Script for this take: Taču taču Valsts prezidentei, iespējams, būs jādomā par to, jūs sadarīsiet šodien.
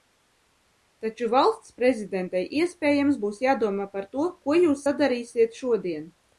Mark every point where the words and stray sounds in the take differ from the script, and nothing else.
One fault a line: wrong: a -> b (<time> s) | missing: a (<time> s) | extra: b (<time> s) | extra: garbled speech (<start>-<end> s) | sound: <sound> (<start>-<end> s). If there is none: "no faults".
missing: taču (1.3 s)
extra: ko (4.5 s)